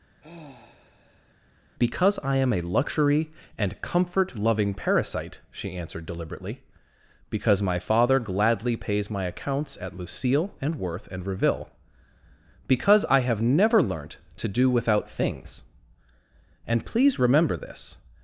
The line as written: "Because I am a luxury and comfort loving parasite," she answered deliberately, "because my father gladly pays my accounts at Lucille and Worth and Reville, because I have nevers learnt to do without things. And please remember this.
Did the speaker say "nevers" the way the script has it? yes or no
no